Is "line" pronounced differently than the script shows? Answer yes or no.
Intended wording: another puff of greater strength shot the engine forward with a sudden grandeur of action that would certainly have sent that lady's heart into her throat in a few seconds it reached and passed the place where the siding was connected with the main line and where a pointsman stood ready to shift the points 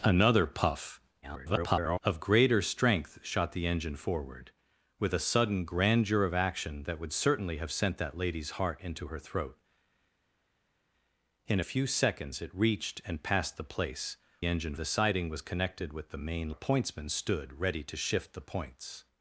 yes